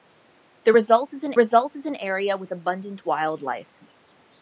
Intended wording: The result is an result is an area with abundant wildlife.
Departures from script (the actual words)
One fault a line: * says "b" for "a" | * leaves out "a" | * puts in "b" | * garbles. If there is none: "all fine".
all fine